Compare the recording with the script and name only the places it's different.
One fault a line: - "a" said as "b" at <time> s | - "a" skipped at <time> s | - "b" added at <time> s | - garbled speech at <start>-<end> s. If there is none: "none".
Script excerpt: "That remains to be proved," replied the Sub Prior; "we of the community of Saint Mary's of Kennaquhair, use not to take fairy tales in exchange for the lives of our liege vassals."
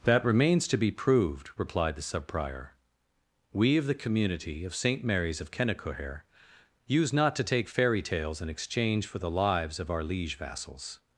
none